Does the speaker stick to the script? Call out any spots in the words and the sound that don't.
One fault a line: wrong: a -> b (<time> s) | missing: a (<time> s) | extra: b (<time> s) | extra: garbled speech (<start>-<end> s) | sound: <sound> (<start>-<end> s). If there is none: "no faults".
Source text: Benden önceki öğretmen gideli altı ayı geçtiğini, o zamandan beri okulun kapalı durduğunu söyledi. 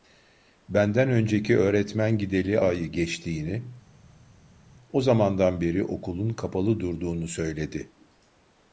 missing: altı (2.6 s)